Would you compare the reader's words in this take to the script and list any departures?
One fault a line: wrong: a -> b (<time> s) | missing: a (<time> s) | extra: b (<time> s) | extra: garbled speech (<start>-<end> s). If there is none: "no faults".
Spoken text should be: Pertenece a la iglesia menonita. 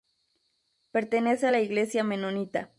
no faults